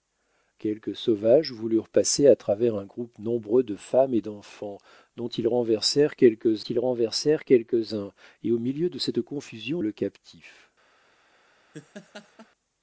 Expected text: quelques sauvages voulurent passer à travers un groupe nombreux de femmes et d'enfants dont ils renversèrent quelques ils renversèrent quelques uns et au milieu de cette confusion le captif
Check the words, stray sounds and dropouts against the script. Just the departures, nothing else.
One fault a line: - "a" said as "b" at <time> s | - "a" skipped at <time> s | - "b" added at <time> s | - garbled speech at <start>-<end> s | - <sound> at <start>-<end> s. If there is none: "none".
- laugh at 11.7-12.5 s